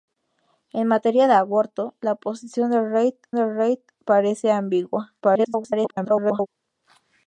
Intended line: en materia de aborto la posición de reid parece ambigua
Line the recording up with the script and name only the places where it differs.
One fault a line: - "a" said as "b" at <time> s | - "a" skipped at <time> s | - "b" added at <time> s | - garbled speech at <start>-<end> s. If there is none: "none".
- "de reid" added at 3.4 s
- garbled speech at 5.2-6.5 s